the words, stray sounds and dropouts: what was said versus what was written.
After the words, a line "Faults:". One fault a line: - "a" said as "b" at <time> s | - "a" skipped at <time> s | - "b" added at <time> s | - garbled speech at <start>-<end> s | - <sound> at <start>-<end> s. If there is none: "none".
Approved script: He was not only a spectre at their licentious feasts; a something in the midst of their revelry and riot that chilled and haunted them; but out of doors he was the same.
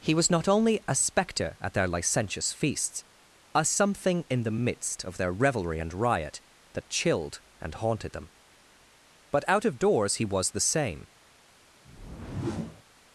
He was not only a spectre at their licentious feasts; a something in the midst of their revelry and riot that chilled and haunted them; but out of doors he was the same.
Faults:
- whoosh at 11.8-12.8 s